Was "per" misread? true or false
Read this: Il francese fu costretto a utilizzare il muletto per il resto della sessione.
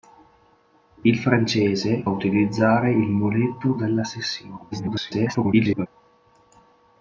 true